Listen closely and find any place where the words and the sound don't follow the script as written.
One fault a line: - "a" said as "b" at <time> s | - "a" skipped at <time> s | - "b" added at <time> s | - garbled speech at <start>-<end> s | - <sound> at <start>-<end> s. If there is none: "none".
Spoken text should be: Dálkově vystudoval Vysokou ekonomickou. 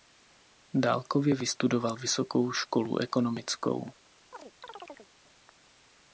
- "školu" added at 2.5 s
- chirp at 4.3-5.1 s